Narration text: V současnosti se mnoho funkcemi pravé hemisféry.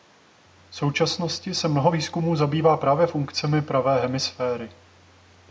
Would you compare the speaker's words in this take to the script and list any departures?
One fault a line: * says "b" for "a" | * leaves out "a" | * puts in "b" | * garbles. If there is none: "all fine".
* puts in "výzkumů zabývá právě"